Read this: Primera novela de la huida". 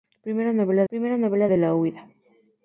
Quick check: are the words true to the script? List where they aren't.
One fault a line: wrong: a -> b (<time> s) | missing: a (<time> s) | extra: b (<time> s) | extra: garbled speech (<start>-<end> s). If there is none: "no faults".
extra: primera novela (0.9 s)